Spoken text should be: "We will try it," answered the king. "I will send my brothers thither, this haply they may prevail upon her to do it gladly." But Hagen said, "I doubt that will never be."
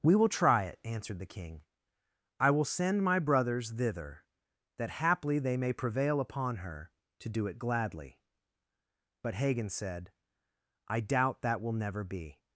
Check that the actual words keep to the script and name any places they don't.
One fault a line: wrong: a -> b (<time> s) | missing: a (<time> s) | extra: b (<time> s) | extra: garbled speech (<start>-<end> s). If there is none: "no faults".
wrong: this -> that (4.8 s)